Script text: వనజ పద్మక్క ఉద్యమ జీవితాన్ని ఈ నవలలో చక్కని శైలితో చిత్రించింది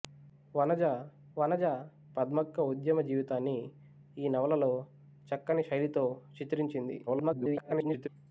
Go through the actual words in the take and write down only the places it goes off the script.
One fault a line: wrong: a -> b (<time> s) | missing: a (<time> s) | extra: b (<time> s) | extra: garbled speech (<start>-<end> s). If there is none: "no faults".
extra: వనజ (1.4 s)
extra: garbled speech (7.1-8.1 s)